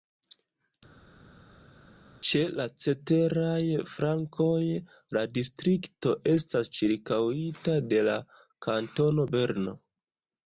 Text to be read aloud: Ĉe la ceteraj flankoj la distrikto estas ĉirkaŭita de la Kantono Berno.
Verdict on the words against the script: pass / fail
pass